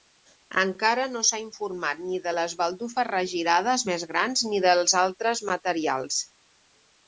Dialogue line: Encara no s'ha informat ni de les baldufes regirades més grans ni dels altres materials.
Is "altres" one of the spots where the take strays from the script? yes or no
no